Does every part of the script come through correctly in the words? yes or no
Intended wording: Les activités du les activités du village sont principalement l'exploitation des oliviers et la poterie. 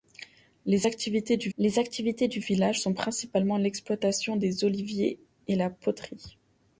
yes